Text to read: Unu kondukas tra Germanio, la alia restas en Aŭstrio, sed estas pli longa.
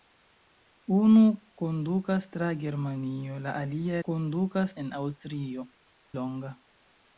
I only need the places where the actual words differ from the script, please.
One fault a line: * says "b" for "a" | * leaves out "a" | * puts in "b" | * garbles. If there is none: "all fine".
* says "kondukas" for "restas"
* leaves out "sed estas pli"